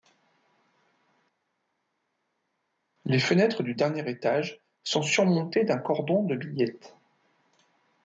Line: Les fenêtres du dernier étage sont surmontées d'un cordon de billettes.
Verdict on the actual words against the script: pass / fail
pass